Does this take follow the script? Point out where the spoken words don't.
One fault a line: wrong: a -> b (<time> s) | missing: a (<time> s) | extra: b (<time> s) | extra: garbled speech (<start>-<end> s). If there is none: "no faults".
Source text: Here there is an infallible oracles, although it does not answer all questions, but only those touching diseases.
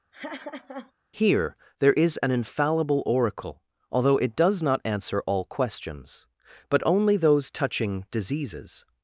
wrong: oracles -> oracle (3.1 s)